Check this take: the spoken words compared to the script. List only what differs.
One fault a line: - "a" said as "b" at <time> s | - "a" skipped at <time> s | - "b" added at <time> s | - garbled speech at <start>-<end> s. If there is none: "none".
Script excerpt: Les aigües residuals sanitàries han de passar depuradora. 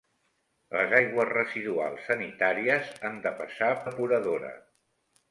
none